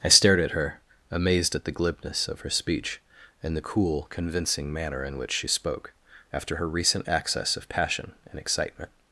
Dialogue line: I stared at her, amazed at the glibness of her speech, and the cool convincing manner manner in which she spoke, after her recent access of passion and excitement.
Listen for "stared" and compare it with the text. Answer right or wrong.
right